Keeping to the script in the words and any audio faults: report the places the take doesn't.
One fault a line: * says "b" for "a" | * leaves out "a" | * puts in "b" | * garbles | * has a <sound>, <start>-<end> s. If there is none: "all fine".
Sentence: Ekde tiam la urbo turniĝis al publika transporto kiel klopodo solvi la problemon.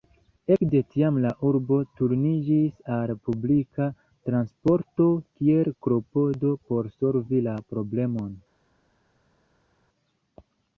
* puts in "por"